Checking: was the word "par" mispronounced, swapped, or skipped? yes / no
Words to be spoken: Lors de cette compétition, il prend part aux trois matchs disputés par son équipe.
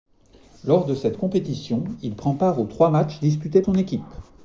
yes